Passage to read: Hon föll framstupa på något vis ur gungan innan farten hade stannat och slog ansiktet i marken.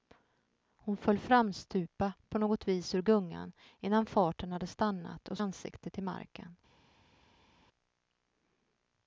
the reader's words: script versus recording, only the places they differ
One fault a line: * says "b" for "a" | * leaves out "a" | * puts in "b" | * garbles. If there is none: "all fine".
* leaves out "slog"